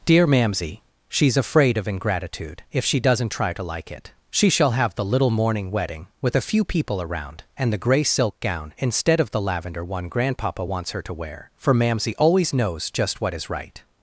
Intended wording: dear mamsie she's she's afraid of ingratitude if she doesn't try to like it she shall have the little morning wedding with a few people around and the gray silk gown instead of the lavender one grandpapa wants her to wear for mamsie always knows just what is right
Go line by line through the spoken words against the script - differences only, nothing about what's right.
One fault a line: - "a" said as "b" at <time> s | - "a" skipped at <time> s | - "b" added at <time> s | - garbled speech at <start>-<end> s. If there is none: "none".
- "she's" skipped at 1.4 s